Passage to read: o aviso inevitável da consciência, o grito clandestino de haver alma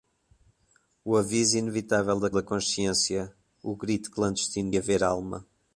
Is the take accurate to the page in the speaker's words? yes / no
no